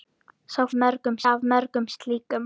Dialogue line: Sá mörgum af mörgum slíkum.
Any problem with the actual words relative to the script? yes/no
no